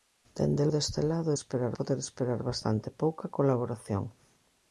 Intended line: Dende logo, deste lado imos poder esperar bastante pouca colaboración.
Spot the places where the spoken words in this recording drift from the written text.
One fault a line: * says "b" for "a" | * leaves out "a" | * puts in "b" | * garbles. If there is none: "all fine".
* leaves out "logo"
* says "esperar" for "imos"